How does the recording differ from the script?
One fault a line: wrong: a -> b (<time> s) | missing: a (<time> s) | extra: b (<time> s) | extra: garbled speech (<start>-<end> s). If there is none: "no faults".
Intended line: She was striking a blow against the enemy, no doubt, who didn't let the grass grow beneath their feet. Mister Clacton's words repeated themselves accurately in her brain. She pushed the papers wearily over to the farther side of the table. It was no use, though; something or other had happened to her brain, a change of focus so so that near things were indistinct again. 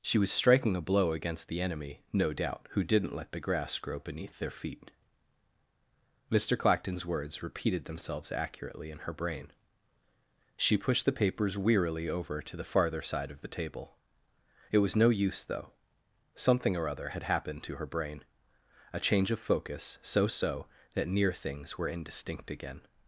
no faults